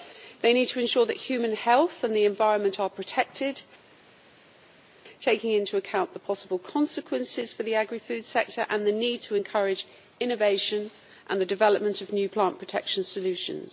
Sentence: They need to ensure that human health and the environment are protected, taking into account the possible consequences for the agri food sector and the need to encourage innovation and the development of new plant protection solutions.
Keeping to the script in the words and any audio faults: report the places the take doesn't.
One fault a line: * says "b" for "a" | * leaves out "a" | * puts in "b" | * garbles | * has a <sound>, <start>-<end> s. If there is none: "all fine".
all fine